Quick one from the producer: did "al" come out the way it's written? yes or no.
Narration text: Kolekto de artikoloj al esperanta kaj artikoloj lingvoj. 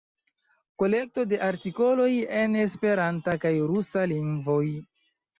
no